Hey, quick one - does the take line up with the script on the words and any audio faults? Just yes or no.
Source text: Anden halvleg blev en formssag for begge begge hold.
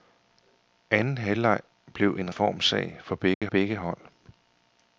no